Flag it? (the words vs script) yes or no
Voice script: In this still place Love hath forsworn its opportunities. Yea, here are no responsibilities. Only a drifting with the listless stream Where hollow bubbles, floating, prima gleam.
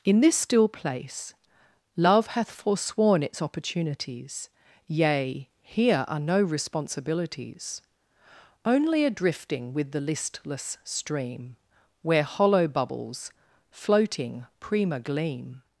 no